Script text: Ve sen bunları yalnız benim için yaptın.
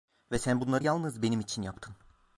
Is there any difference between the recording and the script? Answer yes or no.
no